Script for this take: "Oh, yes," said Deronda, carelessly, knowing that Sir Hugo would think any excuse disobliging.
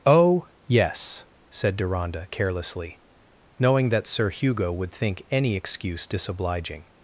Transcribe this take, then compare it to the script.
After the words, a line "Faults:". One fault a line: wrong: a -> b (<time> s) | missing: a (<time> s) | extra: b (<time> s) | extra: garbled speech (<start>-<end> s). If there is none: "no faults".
"Oh, yes," said Deronda, carelessly, knowing that Sir Hugo would think any excuse disobliging.
Faults:
no faults